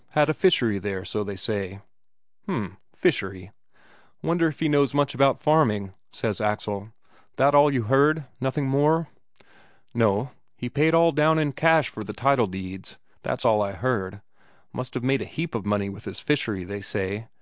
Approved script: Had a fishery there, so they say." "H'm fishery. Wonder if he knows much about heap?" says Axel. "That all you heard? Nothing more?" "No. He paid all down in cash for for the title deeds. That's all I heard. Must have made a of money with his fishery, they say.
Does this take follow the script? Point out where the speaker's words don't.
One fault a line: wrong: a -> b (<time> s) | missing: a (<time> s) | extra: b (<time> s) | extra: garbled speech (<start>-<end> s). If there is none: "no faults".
wrong: heap -> farming (5.4 s)
missing: for (12.0 s)
extra: heap (15.2 s)